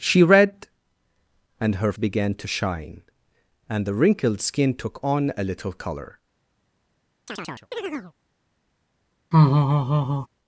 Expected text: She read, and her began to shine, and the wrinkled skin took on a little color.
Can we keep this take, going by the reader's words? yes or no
yes